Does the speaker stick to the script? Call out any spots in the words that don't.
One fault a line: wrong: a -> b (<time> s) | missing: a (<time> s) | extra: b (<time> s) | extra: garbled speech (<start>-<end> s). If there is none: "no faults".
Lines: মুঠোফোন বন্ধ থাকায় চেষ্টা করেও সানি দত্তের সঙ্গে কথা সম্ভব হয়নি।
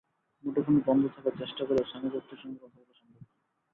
extra: বলা (2.8 s)